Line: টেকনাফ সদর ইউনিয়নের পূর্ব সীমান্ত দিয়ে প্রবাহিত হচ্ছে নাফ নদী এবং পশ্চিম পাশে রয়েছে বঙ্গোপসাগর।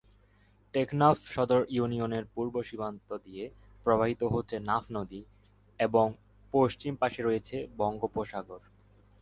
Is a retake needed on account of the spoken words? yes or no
no